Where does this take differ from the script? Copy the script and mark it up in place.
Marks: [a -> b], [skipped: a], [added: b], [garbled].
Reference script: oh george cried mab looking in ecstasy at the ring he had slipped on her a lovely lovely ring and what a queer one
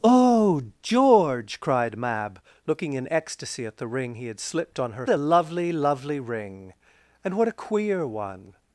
oh george cried mab looking in ecstasy at the ring he had slipped on her a lovely lovely ring and what a queer one